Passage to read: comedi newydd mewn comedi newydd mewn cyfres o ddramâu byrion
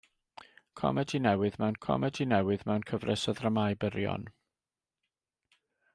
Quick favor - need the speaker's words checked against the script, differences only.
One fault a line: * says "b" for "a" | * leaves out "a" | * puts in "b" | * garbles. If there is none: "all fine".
all fine